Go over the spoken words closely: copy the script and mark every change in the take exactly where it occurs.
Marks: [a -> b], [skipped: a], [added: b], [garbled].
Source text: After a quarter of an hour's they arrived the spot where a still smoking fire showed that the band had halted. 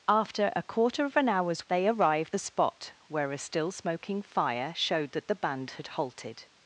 After a quarter of an hour's they arrived the spot where a still smoking fire showed that the band had halted.